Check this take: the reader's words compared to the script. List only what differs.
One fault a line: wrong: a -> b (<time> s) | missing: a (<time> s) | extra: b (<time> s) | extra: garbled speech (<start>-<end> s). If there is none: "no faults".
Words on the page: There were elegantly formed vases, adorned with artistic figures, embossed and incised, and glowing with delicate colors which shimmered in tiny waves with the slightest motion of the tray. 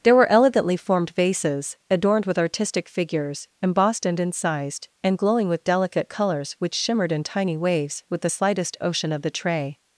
wrong: motion -> ocean (8.8 s)